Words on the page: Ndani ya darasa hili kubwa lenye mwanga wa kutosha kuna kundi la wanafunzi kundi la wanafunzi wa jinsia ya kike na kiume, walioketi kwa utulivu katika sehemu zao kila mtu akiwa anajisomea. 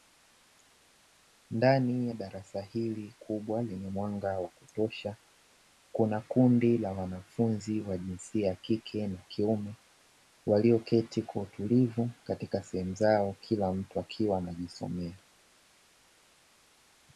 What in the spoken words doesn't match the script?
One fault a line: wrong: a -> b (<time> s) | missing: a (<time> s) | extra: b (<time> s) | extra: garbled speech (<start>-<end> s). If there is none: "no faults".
missing: kundi la wanafunzi (7.8 s)